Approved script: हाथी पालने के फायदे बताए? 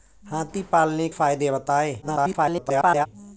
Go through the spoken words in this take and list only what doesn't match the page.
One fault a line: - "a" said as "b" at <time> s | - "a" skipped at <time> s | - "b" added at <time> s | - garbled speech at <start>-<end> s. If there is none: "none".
- "के" skipped at 1.1 s
- garbled speech at 2.0-3.1 s